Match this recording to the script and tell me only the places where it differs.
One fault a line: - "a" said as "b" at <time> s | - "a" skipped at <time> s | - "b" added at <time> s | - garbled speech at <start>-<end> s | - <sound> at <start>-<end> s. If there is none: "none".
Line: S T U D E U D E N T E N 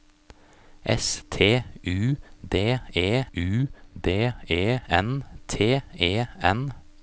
none